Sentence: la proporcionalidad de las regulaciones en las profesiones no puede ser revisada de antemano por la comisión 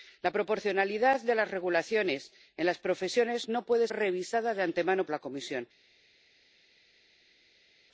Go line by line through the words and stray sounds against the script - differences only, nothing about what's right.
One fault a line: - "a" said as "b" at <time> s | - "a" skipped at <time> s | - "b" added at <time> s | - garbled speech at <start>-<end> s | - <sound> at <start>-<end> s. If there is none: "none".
- "ser" skipped at 3.9 s
- "por" skipped at 5.1 s